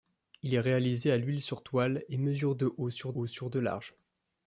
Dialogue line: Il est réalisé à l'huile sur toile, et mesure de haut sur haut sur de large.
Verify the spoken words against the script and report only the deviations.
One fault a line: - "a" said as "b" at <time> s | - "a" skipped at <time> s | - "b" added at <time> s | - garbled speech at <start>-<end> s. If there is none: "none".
none